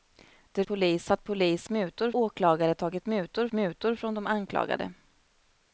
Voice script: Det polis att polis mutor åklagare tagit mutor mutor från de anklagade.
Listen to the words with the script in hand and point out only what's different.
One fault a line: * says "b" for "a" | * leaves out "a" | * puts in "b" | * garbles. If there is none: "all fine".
all fine